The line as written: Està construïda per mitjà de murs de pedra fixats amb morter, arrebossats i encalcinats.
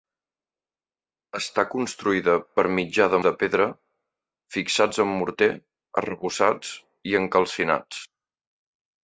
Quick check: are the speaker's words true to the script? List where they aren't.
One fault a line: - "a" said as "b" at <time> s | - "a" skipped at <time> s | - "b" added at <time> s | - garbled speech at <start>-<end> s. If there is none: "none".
- "murs" skipped at 3.2 s